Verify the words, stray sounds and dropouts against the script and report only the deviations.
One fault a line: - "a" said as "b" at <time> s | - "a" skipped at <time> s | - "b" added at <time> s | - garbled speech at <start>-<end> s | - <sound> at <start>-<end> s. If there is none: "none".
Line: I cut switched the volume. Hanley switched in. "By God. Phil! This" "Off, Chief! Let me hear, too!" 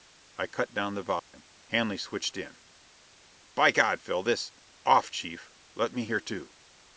- "switched" said as "down" at 0.7 s
- dropout at 1.2-1.3 s